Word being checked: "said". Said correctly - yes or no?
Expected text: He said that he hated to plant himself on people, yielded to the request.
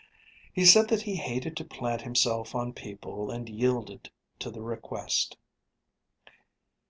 yes